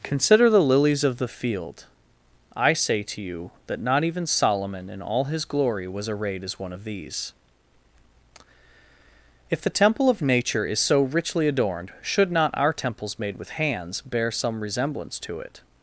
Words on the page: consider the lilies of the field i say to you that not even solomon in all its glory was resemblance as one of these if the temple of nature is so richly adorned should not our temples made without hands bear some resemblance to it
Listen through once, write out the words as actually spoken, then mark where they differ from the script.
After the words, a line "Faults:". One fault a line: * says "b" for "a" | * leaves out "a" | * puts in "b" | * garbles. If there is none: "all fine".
consider the lilies of the field i say to you that not even solomon in all his glory was arrayed as one of these if the temple of nature is so richly adorned should not our temples made with hands bear some resemblance to it
Faults:
* says "his" for "its"
* says "arrayed" for "resemblance"
* says "with" for "without"